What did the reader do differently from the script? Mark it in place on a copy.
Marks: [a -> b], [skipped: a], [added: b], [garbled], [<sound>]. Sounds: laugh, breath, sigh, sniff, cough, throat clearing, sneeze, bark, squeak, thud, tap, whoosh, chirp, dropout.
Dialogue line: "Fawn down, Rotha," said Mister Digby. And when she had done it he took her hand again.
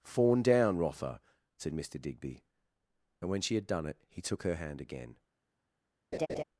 "Fawn down, Rotha," said Mister Digby. And when she had done it he took her hand again. [laugh]